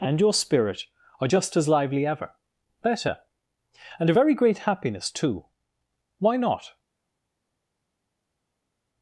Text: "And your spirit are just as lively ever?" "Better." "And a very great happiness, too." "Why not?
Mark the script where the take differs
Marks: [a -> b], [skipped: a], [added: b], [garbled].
"And your spirit are just as lively ever?" "Better." "And a very great happiness, too." "Why not?